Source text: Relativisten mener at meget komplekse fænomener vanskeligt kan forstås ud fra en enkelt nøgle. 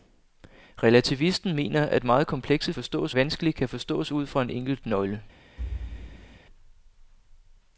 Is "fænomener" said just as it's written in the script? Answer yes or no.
no